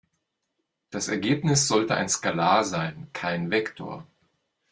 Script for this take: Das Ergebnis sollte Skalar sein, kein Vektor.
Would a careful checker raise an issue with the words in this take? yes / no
yes